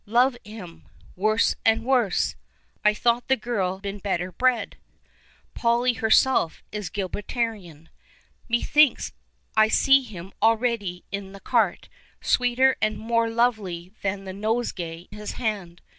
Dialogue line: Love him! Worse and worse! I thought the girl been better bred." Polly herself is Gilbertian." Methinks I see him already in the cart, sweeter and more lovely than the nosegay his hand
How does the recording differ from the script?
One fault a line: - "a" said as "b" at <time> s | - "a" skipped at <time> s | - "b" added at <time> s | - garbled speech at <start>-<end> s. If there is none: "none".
none